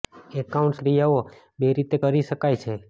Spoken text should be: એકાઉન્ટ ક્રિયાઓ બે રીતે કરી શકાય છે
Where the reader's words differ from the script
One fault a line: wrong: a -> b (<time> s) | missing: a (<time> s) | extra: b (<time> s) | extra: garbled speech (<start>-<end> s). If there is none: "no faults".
no faults